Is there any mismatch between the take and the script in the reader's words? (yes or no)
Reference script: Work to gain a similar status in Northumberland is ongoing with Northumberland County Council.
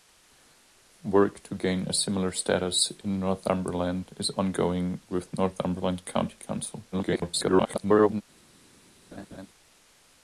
yes